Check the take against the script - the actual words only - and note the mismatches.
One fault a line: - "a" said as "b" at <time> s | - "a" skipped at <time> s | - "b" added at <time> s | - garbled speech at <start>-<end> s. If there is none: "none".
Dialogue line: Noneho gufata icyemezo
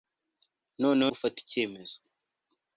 none